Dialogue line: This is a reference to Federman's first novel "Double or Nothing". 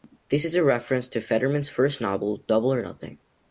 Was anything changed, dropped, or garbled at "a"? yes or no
no